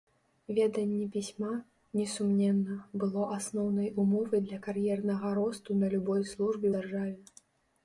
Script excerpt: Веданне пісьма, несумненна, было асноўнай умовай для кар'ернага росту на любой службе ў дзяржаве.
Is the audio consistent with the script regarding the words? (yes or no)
no